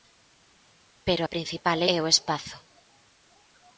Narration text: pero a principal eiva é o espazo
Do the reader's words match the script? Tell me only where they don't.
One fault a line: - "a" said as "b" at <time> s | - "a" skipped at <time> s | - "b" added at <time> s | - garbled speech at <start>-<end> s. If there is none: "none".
- "eiva" skipped at 1.8 s